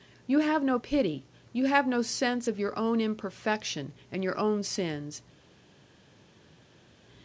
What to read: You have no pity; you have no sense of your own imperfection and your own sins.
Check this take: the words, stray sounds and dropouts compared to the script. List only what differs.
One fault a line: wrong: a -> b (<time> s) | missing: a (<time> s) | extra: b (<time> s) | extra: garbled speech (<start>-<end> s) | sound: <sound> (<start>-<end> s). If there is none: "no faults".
no faults